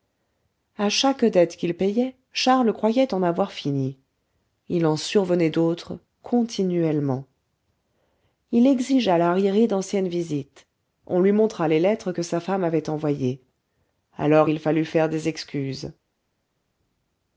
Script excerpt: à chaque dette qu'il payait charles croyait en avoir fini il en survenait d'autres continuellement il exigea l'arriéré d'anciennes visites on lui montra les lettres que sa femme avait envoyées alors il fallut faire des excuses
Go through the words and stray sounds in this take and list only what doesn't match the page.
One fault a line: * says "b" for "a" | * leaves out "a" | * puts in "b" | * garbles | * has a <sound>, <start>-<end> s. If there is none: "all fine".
all fine